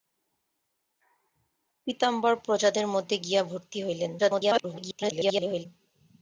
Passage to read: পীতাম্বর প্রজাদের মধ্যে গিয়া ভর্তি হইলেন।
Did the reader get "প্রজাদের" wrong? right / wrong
right